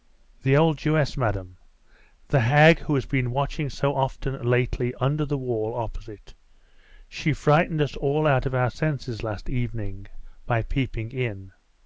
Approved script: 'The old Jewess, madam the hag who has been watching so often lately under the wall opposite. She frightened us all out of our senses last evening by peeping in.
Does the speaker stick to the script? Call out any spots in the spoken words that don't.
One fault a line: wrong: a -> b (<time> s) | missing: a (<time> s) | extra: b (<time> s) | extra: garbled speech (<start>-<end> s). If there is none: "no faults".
no faults